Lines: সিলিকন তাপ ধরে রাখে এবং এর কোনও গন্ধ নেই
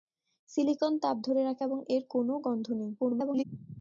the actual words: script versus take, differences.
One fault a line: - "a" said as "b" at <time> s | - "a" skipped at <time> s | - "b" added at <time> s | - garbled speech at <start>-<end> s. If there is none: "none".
- garbled speech at 3.0-3.4 s